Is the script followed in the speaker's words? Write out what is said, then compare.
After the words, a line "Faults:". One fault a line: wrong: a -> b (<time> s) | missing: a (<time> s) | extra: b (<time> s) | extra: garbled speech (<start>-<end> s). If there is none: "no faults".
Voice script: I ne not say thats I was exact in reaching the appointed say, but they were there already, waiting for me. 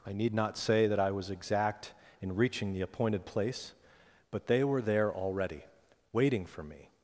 I need not say that I was exact in reaching the appointed place, but they were there already, waiting for me.
Faults:
wrong: ne -> need (0.1 s)
wrong: thats -> that (0.9 s)
wrong: say -> place (3.2 s)